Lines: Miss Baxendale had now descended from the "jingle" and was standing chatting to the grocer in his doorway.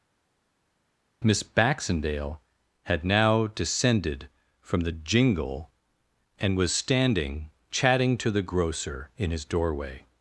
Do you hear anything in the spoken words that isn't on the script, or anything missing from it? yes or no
no